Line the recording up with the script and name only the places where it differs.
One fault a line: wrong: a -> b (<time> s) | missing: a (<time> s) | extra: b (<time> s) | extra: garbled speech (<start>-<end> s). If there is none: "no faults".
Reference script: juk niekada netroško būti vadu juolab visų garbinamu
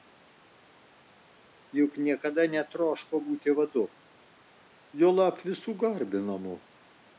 no faults